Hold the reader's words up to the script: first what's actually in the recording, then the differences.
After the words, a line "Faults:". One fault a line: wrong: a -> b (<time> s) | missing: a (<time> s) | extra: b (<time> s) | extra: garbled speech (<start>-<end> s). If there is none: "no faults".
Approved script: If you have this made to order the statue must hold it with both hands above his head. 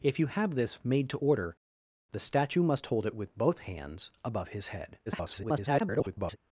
If you have this made to order the statue must hold it with both hands above his head. [garbled]
Faults:
extra: garbled speech (5.1-6.4 s)